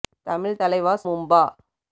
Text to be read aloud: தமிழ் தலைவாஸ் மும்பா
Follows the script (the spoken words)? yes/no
yes